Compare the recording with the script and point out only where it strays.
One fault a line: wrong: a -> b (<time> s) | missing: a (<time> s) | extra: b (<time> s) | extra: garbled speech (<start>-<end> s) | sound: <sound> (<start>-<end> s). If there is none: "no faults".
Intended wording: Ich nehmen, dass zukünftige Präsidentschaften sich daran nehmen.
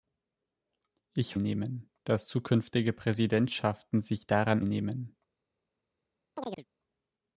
sound: chirp (6.4-6.7 s)